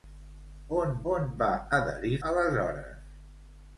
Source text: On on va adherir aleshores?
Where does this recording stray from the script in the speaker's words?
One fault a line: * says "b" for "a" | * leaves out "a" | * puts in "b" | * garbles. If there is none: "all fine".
all fine